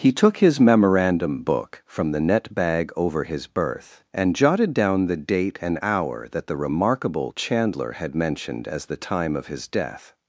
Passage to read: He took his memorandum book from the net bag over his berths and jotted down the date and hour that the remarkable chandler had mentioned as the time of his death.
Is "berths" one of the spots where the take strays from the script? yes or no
yes